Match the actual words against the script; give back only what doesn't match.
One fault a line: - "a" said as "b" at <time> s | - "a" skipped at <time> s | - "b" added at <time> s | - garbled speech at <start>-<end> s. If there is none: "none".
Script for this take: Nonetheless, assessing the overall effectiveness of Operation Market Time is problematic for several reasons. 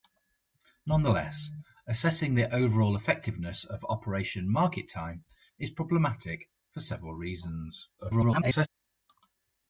- garbled speech at 8.0-8.7 s